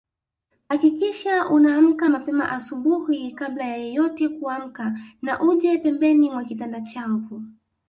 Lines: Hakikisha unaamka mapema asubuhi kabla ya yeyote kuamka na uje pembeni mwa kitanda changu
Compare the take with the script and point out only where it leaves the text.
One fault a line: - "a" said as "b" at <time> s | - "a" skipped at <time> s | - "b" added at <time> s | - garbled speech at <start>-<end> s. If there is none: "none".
none